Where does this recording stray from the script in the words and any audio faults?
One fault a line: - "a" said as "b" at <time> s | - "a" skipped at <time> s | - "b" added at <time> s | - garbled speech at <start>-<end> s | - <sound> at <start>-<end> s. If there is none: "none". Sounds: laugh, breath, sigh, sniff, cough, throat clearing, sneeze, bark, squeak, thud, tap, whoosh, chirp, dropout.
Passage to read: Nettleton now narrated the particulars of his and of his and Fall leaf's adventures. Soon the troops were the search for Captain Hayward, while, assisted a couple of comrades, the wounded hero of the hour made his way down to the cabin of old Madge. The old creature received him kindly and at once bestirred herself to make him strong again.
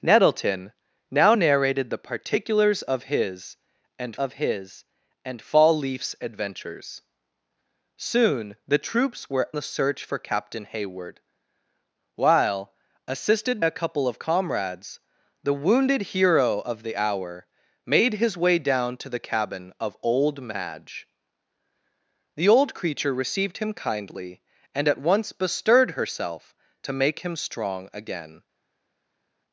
none